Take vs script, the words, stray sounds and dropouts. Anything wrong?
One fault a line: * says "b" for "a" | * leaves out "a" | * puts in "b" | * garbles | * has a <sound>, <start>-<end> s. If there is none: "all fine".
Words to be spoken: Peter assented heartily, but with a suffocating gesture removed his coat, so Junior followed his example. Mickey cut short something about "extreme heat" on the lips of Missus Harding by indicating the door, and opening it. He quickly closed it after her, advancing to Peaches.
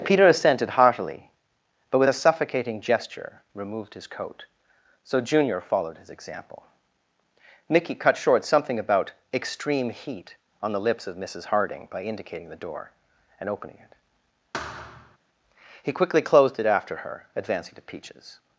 * has a thud, 14.5-15.2 s